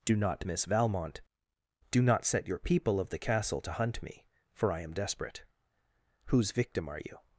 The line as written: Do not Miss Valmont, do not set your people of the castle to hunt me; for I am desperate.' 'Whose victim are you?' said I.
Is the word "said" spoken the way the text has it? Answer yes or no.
no